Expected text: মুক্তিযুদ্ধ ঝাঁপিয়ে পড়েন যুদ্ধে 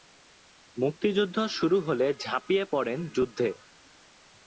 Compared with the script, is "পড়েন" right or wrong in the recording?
right